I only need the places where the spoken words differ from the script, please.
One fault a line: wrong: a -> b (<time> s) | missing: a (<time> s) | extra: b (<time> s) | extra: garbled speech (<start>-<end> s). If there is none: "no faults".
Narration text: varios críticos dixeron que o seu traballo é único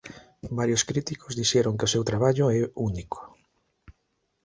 no faults